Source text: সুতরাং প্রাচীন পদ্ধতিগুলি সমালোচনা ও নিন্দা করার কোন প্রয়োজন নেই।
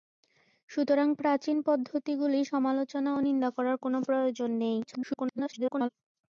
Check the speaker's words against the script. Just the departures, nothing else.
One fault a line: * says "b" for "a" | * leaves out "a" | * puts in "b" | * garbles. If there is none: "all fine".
* garbles